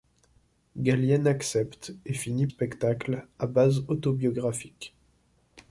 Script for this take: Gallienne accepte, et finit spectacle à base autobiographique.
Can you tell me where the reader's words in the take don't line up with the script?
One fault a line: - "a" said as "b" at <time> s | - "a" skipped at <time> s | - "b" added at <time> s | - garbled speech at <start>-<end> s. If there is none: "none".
none